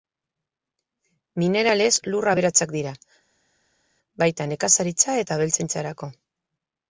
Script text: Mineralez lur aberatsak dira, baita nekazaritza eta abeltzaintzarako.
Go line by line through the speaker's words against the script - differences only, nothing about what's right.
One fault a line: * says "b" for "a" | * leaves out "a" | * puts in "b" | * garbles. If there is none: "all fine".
all fine